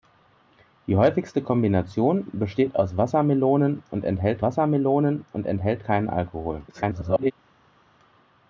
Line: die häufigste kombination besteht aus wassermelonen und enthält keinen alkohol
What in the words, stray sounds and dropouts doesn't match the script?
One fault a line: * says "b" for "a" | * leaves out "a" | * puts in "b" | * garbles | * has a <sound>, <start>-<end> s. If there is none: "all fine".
* puts in "wassermelonen und enthält"
* garbles